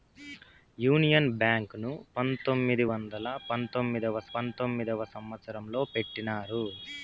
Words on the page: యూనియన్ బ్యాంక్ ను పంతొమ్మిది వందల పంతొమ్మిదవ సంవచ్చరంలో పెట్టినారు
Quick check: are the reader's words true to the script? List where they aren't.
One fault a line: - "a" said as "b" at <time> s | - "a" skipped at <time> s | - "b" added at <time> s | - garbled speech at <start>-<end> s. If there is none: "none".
- "పంతొమ్మిదవ" added at 4.3 s